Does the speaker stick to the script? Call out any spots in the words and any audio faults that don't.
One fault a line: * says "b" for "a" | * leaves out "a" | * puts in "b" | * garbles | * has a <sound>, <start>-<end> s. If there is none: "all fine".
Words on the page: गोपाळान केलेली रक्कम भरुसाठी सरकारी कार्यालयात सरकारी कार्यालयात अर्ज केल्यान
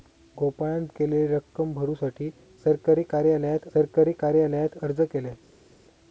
all fine